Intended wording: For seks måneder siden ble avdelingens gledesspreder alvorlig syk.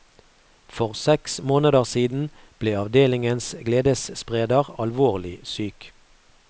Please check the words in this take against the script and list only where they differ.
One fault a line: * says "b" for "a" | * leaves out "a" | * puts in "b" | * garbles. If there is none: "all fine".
all fine